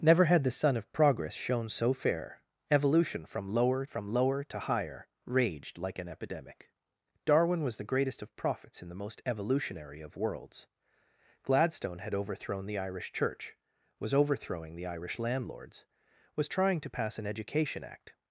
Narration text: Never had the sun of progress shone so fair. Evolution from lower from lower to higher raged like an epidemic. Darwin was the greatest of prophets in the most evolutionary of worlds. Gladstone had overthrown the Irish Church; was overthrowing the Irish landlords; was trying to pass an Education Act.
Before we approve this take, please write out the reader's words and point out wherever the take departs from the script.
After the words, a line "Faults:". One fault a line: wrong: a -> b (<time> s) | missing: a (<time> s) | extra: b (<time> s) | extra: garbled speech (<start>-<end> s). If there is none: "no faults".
Never had the sun of progress shone so fair. Evolution from lower from lower to higher raged like an epidemic. Darwin was the greatest of prophets in the most evolutionary of worlds. Gladstone had overthrown the Irish Church; was overthrowing the Irish landlords; was trying to pass an Education Act.
Faults:
no faults